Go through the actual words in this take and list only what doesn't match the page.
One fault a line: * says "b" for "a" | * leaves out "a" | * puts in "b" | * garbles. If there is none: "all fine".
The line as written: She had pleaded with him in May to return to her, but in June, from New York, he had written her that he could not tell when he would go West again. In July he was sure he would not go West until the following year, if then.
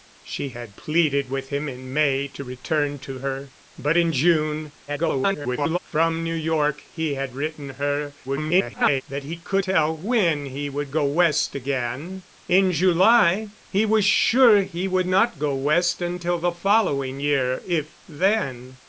* garbles
* garbles
* leaves out "not"